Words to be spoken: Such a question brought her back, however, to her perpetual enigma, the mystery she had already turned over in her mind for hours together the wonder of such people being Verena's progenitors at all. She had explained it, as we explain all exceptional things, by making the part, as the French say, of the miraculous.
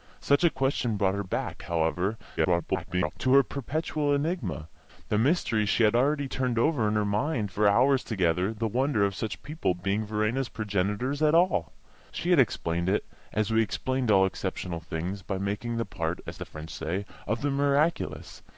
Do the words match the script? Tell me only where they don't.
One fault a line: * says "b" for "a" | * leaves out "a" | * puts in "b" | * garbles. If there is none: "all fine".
* garbles